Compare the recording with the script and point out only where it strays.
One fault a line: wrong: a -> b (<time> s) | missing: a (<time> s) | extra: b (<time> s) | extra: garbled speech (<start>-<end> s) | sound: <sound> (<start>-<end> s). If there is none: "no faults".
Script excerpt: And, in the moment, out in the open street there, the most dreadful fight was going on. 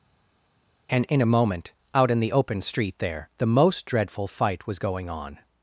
wrong: the -> a (1.2 s)